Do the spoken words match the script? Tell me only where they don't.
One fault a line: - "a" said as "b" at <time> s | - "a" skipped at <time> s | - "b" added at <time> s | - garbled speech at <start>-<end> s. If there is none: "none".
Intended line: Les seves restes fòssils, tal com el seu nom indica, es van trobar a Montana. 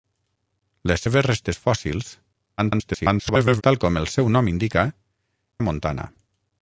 - garbled speech at 2.6-3.6 s
- "es van trobar" skipped at 4.9 s